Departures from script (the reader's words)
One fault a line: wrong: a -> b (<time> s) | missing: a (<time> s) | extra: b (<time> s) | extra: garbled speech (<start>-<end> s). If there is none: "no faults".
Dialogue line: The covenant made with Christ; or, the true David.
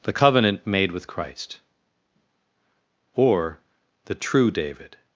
no faults